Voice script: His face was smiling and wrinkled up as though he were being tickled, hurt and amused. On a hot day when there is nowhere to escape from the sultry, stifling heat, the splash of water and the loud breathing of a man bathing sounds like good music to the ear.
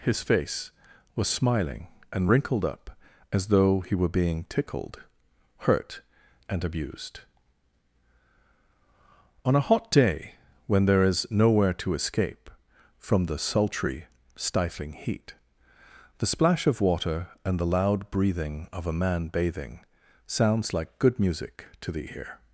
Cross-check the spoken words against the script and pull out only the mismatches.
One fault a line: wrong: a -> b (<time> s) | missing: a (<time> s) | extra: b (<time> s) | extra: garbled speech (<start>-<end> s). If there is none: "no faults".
wrong: amused -> abused (6.6 s)